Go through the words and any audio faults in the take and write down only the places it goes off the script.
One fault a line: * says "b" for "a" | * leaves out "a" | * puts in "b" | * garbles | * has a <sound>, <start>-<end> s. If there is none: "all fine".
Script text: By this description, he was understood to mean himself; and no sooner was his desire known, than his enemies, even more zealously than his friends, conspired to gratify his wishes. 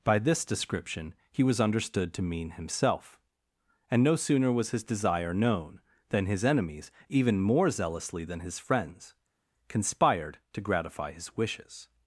all fine